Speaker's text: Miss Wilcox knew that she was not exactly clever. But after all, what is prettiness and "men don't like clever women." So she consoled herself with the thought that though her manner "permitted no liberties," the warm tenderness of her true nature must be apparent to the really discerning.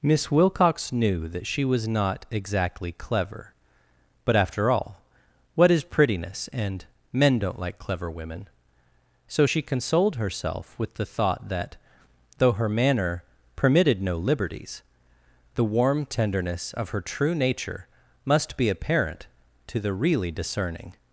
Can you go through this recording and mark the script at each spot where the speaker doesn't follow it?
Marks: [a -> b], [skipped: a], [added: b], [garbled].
Miss Wilcox knew that she was not exactly clever. But after all, what is prettiness and "men don't like clever women." So she consoled herself with the thought that though her manner "permitted no liberties," the warm tenderness of her true nature must be apparent to the really discerning.